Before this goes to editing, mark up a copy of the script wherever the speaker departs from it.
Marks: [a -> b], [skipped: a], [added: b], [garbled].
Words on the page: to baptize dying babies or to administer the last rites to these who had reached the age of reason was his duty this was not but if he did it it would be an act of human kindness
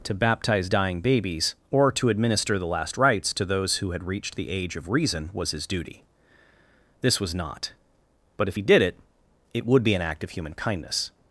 to baptize dying babies or to administer the last rites to [these -> those] who had reached the age of reason was his duty this was not but if he did it it would be an act of human kindness